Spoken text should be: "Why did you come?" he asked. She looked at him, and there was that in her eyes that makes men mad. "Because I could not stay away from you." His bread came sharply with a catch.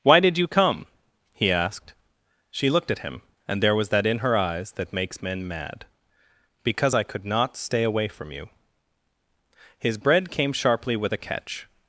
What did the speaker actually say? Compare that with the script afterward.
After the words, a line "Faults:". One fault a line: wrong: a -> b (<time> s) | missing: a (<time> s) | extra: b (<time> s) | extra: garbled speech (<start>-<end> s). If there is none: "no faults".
"Why did you come?" he asked. She looked at him, and there was that in her eyes that makes men mad. "Because I could not stay away from you." His bread came sharply with a catch.
Faults:
no faults